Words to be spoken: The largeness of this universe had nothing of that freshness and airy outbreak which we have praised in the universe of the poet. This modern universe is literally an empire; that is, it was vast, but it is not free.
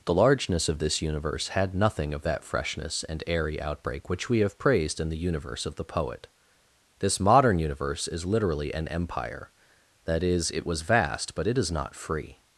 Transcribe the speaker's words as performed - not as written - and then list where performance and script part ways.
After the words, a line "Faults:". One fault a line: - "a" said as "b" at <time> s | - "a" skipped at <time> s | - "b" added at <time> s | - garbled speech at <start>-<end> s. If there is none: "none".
The largeness of this universe had nothing of that freshness and airy outbreak which we have praised in the universe of the poet. This modern universe is literally an empire; that is, it was vast, but it is not free.
Faults:
none